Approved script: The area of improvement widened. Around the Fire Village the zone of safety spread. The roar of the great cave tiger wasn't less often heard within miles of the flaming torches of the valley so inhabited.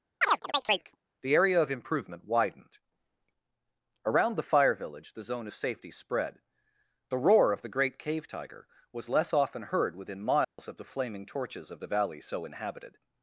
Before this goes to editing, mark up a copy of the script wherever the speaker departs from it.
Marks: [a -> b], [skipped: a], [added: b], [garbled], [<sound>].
[chirp] The area of improvement widened. Around the Fire Village the zone of safety spread. The roar of the great cave tiger [wasn't -> was] less often heard within miles [dropout] of the flaming torches of the valley so inhabited.